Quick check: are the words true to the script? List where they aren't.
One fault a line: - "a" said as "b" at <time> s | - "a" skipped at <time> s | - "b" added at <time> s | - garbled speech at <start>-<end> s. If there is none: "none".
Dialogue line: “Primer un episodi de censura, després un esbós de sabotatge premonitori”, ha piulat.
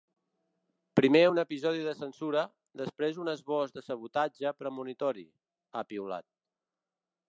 none